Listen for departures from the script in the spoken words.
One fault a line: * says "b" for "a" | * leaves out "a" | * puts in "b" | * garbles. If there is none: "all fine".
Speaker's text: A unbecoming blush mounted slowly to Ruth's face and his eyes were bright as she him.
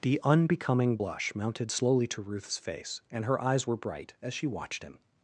* says "The" for "A"
* says "her" for "his"
* puts in "watched"